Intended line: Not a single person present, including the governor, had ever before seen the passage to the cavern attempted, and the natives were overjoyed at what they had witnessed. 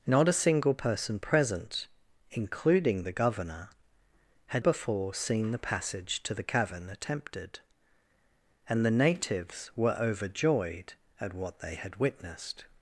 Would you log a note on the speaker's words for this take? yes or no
yes